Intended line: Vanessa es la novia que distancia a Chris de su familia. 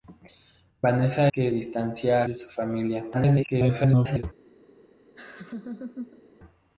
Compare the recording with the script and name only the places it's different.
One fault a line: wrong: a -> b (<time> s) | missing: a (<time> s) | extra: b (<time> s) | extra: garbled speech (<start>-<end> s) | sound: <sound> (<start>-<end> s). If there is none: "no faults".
missing: es la novia (1.3 s)
missing: a Chris (2.2 s)
extra: garbled speech (3.1-4.2 s)
sound: laugh (5.2-6.2 s)